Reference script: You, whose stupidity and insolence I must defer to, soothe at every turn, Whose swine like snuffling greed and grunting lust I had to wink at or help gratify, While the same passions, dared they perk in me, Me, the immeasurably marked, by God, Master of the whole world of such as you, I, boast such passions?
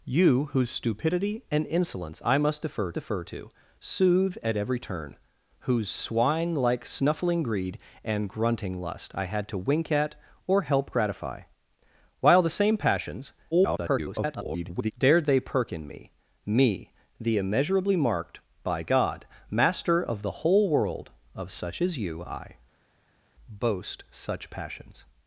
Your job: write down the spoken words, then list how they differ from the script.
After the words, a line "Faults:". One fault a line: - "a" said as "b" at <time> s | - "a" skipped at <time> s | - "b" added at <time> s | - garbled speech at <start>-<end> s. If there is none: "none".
You, whose stupidity and insolence I must defer defer to, soothe at every turn, Whose swine like snuffling greed and grunting lust I had to wink at or help gratify, While the same passions, [garbled] dared they perk in me, Me, the immeasurably marked, by God, Master of the whole world of such as you, I, boast such passions?
Faults:
- "defer" added at 3.0 s
- garbled speech at 13.5-14.9 s